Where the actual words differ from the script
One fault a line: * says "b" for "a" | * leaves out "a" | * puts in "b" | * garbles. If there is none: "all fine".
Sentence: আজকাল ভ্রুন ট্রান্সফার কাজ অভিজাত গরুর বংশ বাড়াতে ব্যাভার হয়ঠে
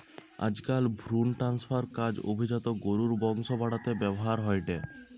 all fine